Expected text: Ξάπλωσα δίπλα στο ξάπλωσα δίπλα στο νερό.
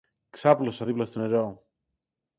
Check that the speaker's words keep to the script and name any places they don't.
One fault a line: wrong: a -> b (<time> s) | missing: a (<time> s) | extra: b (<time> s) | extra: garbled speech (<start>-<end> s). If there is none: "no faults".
missing: ξάπλωσα δίπλα στο (1.2 s)